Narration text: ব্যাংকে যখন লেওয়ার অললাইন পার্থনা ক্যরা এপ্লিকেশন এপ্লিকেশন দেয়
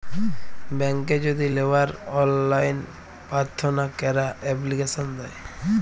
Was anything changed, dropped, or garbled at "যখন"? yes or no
yes